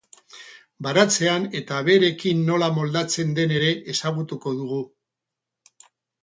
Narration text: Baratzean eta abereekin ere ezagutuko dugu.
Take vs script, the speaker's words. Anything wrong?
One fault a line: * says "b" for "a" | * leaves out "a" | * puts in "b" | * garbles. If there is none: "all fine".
* puts in "nola moldatzen den"